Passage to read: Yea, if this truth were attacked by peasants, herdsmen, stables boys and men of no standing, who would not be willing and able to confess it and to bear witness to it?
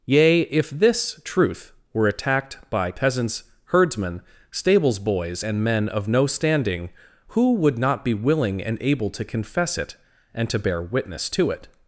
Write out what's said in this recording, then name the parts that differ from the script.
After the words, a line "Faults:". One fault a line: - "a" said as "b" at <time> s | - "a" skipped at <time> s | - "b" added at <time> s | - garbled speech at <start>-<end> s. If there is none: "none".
Yea, if this truth were attacked by peasants, herdsmen, stables boys and men of no standing, who would not be willing and able to confess it and to bear witness to it?
Faults:
none